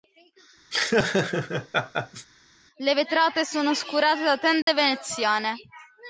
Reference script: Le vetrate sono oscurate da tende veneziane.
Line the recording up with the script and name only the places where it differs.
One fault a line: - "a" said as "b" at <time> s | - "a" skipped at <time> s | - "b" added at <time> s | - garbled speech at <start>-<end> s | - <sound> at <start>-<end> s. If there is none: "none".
- laugh at 0.7-2.3 s
- dropout at 4.6-4.7 s